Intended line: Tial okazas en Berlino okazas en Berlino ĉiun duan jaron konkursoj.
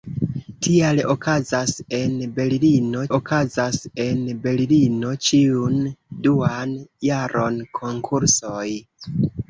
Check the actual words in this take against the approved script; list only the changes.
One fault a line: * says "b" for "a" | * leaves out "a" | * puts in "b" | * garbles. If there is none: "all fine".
all fine